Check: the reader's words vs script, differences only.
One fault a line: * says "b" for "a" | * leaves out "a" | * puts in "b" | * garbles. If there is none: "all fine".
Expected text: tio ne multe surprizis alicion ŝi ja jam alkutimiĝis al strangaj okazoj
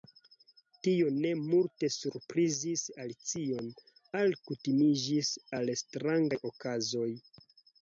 * leaves out "ŝi ja jam"